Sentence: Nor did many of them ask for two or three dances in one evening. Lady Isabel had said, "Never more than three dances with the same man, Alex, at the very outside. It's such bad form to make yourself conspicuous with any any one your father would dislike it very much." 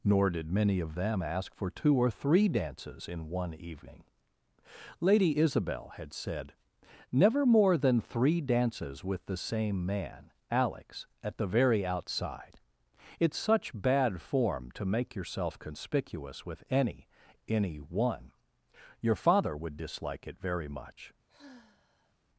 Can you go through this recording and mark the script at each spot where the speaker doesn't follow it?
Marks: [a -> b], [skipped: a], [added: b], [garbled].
Nor did many of them ask for two or three dances in one evening. Lady Isabel had said, "Never more than three dances with the same man, Alex, at the very outside. It's such bad form to make yourself conspicuous with any any one your father would dislike it very much."